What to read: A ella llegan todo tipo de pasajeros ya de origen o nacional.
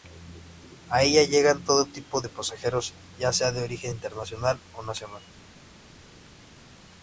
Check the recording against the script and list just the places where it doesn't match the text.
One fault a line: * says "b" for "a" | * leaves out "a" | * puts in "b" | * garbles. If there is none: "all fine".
* puts in "sea"
* puts in "internacional"